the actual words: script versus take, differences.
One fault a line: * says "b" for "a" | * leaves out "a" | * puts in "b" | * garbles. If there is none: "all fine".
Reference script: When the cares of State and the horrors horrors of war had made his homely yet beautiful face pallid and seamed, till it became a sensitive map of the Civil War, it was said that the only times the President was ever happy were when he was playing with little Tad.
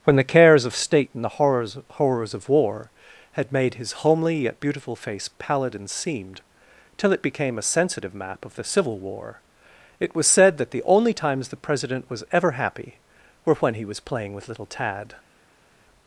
all fine